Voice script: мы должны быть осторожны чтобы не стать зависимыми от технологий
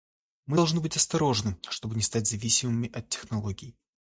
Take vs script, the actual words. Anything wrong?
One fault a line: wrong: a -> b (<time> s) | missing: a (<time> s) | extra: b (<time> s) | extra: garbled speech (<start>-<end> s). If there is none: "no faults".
no faults